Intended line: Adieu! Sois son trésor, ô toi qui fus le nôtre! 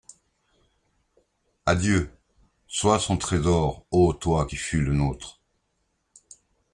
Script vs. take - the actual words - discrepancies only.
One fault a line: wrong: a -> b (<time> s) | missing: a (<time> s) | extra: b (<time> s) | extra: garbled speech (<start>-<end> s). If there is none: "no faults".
no faults